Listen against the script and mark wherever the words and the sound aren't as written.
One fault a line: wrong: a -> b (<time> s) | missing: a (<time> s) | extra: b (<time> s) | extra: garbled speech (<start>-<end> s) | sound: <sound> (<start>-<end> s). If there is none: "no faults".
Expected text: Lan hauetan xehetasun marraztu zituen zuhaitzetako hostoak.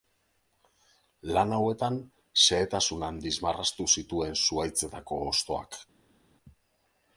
extra: handiz (3.1 s)